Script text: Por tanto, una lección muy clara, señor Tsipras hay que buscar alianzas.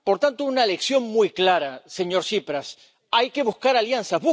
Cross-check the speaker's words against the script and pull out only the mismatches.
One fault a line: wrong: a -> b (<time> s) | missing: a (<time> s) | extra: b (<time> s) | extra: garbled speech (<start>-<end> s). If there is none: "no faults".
no faults